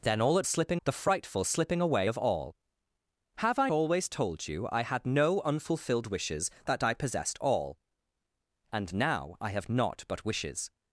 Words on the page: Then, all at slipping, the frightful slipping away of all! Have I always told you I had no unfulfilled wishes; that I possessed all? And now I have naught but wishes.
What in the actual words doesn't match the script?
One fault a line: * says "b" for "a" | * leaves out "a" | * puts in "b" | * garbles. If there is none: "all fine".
all fine